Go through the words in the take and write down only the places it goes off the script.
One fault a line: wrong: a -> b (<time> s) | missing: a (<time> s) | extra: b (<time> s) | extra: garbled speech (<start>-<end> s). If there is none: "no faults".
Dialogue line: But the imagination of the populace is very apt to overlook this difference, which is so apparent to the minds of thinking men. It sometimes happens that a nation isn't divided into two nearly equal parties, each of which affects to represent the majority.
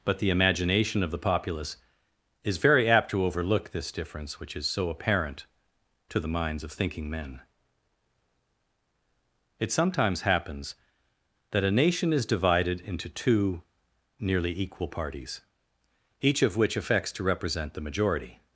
wrong: isn't -> is (12.1 s)